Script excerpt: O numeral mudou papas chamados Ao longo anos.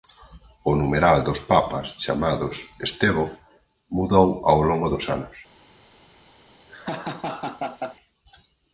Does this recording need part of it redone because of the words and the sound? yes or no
yes